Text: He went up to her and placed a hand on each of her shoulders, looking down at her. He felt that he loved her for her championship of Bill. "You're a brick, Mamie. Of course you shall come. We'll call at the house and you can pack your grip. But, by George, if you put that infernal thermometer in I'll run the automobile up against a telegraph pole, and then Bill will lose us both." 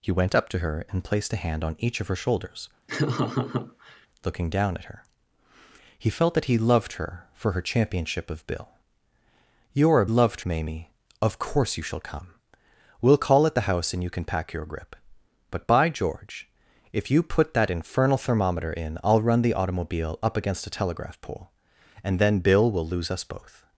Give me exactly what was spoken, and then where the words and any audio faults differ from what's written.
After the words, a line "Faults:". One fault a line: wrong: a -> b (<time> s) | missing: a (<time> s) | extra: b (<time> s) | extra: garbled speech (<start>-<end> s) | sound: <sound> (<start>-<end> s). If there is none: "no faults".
He went up to her and placed a hand on each of her shoulders, looking down at her. He felt that he loved her for her championship of Bill. "You're a loved, Mamie. Of course you shall come. We'll call at the house and you can pack your grip. But, by George, if you put that infernal thermometer in I'll run the automobile up against a telegraph pole, and then Bill will lose us both."
Faults:
sound: laugh (2.9-4.1 s)
wrong: brick -> loved (10.1 s)